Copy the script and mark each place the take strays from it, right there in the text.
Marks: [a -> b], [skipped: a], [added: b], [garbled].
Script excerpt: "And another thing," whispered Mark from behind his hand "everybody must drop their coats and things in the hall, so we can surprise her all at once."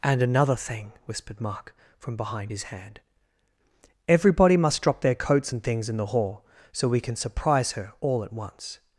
"And another thing," whispered Mark from behind his hand "everybody must drop their coats and things in the hall, so we can surprise her all at once."